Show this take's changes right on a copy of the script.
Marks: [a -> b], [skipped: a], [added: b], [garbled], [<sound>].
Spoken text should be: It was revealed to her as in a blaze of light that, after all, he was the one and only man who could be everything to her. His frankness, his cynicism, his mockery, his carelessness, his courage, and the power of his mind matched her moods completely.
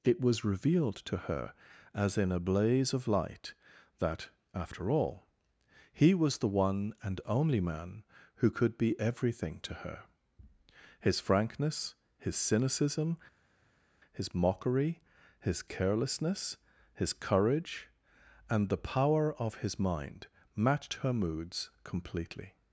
It was revealed to her as in a blaze of light that, after all, he was the one and only man who could be everything to her. His frankness, his cynicism, his mockery, his carelessness, his courage, and the power of his mind matched her moods completely.